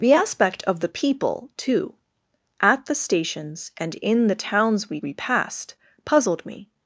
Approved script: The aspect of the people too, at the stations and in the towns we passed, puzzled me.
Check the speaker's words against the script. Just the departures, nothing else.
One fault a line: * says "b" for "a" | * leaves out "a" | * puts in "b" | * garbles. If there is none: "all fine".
* puts in "we"